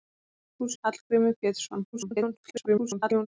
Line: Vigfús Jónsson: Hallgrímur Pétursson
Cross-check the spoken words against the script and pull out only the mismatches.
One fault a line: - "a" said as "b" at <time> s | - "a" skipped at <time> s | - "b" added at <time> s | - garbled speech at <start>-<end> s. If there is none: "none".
- "Jónsson" skipped at 0.8 s
- garbled speech at 1.9-3.3 s